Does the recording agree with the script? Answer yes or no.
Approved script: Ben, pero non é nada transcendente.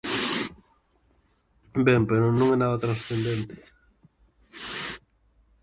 yes